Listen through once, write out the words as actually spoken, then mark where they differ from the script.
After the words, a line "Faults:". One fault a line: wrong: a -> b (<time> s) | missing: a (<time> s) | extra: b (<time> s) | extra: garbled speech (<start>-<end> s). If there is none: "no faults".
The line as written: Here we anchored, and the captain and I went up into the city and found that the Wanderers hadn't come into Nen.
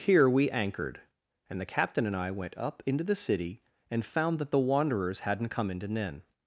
Here we anchored, and the captain and I went up into the city and found that the Wanderers hadn't come into Nen.
Faults:
no faults